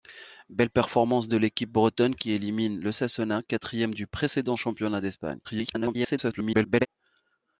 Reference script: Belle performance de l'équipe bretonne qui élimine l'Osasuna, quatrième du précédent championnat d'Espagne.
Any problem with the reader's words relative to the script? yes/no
yes